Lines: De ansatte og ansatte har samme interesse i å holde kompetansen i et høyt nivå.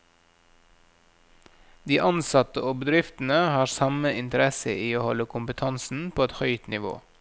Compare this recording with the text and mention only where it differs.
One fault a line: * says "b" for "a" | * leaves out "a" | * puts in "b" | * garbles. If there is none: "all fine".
* says "bedriftene" for "ansatte"
* says "på" for "i"